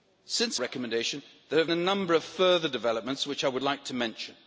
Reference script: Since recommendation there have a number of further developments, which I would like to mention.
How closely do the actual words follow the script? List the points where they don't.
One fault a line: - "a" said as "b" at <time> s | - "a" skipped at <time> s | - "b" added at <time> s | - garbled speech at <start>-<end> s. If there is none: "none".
none